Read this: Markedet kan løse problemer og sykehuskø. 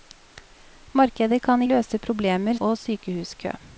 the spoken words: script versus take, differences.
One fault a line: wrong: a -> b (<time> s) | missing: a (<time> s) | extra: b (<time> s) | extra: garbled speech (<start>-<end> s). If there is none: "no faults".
no faults